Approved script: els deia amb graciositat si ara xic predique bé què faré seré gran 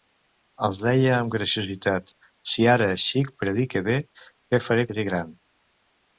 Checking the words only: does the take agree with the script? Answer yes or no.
yes